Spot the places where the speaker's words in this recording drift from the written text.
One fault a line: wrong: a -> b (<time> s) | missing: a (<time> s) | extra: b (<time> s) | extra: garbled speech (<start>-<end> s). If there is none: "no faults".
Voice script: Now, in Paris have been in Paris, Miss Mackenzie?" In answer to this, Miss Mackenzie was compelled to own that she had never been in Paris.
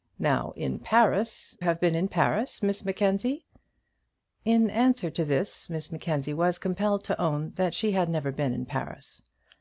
no faults